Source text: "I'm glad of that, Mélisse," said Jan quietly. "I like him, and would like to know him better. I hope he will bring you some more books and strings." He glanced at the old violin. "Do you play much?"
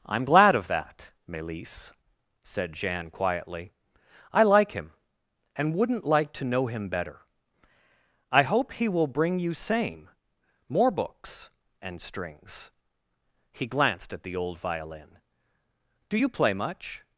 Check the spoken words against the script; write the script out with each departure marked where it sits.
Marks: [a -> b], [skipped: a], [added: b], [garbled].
"I'm glad of that, Mélisse," said Jan quietly. "I like him, and [would -> wouldn't] like to know him better. I hope he will bring you [some -> same] more books and strings." He glanced at the old violin. "Do you play much?"